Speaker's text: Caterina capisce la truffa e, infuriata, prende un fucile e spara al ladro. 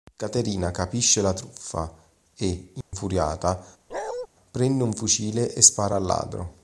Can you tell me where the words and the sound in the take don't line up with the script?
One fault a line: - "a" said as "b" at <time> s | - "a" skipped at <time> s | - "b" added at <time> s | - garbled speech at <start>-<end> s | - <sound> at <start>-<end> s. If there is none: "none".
- dropout at 2.8-2.9 s
- bark at 3.9-4.3 s